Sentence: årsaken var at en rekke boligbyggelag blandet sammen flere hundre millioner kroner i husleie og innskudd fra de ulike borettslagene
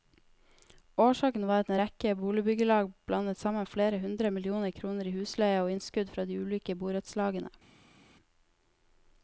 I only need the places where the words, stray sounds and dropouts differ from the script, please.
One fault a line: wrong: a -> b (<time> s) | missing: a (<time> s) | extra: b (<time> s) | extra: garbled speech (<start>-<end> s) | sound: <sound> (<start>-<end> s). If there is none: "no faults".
no faults